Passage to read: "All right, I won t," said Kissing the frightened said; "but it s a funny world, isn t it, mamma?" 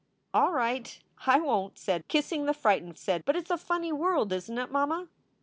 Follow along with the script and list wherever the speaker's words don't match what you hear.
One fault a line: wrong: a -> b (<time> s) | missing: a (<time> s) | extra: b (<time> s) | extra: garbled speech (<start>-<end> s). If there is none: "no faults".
no faults